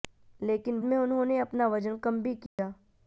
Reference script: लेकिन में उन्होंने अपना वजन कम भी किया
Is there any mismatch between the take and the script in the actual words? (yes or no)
no